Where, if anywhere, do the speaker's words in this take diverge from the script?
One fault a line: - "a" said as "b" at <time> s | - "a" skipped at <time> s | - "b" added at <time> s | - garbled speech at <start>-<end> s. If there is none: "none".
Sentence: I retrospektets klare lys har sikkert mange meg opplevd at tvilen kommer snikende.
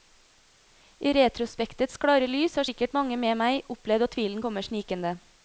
- "med" added at 3.2 s